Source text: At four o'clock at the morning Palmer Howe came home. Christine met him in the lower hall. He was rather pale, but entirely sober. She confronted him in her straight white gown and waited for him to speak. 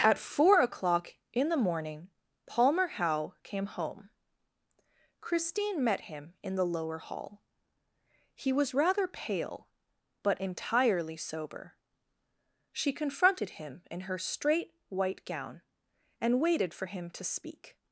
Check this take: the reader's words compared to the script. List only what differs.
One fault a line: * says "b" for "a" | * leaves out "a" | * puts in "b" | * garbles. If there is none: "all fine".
* says "in" for "at"